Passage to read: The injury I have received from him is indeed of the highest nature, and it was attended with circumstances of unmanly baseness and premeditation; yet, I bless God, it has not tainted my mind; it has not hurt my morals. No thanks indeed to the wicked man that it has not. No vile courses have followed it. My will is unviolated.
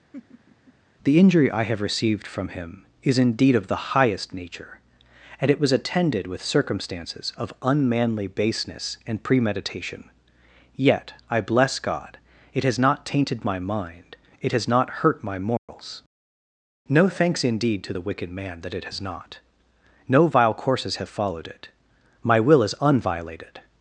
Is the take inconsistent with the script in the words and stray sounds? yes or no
yes